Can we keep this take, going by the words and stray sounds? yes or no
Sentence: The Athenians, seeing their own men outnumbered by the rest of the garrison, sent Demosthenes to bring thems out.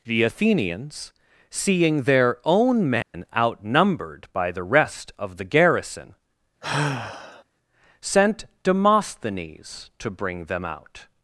no